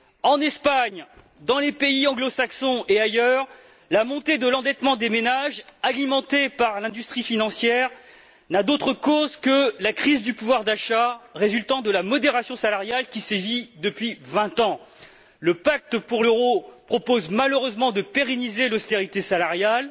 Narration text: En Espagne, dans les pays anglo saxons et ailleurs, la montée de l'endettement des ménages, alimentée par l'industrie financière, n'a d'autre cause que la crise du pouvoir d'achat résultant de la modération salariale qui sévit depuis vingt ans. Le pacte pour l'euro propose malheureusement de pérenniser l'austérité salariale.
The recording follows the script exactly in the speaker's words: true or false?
true